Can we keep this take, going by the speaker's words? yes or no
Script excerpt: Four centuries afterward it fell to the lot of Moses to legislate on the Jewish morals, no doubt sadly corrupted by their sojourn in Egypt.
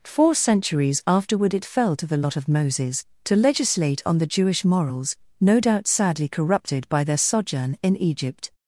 yes